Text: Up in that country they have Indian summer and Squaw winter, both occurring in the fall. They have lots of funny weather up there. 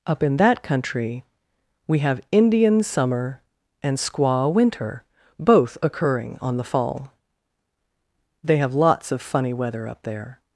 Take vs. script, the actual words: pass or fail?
fail